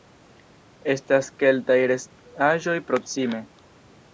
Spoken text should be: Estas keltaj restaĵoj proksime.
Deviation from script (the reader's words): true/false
false